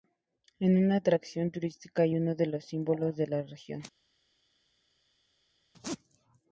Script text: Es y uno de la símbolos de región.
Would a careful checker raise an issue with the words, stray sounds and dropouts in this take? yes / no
yes